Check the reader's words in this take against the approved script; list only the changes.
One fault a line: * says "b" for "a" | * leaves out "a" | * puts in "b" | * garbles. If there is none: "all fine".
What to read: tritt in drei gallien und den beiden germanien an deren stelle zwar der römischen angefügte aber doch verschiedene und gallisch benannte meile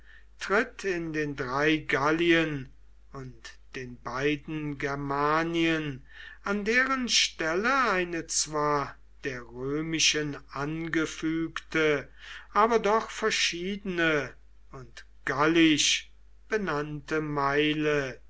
* puts in "den"
* puts in "eine"